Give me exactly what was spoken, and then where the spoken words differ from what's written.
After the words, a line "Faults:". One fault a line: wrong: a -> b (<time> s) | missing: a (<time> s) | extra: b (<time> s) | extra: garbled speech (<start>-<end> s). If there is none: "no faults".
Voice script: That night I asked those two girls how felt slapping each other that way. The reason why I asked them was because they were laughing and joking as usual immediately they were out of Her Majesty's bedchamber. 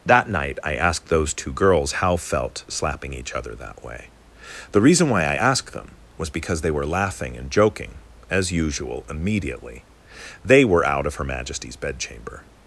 That night I asked those two girls how felt slapping each other that way. The reason why I asked them was because they were laughing and joking as usual immediately they were out of Her Majesty's bedchamber.
Faults:
no faults